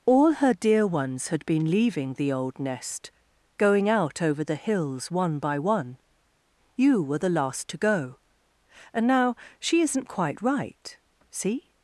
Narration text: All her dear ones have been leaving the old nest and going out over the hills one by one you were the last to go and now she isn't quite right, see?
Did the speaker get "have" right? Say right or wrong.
wrong